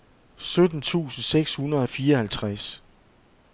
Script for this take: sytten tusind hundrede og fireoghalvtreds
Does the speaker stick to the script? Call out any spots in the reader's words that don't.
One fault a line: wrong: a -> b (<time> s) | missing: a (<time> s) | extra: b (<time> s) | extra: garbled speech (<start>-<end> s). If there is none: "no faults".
extra: seks (1.2 s)